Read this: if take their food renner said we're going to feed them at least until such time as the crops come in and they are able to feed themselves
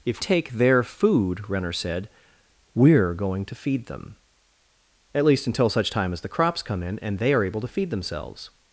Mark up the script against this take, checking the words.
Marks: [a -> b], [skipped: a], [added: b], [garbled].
if take their food renner said we're going to feed them at least until such time as the crops come in and they are able to feed themselves